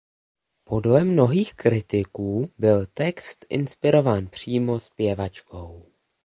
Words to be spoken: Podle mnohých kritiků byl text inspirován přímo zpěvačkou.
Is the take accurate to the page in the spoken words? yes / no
yes